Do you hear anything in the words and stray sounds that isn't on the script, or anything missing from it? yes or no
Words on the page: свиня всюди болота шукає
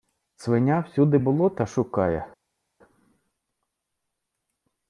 no